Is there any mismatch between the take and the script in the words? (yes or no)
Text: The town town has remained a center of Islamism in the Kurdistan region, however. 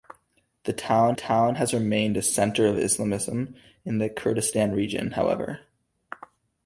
no